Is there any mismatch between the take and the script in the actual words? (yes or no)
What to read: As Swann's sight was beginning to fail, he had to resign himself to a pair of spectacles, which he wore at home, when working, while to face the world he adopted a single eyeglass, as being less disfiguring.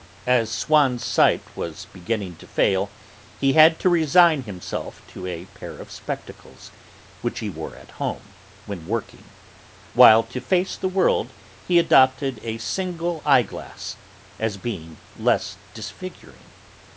no